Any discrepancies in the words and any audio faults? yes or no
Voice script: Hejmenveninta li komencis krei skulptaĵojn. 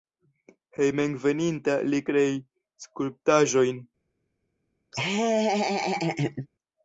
yes